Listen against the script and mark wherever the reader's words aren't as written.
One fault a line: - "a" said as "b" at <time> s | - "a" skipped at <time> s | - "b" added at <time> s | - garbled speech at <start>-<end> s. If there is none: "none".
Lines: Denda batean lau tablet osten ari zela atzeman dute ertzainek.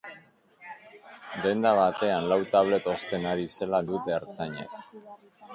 - "atzeman" skipped at 3.8 s